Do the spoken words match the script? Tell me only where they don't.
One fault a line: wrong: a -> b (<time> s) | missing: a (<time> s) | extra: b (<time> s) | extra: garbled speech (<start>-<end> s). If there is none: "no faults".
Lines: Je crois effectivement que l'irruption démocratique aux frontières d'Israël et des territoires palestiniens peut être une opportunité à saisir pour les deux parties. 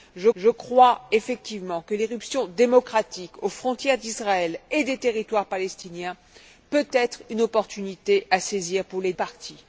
extra: je (0.3 s)
missing: deux (9.1 s)